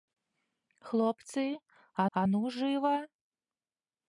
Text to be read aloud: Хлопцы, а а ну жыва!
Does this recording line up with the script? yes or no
yes